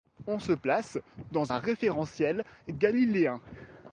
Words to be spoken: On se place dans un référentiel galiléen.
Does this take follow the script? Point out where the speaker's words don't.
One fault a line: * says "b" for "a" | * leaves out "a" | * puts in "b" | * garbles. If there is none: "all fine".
all fine